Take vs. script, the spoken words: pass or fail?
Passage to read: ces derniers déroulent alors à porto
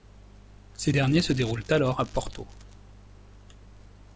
fail